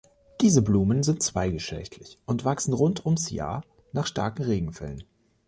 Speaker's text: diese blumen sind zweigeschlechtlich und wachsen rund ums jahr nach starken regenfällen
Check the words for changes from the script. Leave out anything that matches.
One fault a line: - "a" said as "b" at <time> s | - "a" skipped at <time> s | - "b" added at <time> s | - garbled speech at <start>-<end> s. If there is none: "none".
none